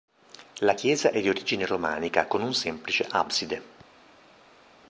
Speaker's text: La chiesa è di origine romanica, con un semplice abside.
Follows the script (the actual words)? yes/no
yes